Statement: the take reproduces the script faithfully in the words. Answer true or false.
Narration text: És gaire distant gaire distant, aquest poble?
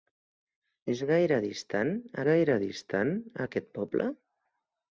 true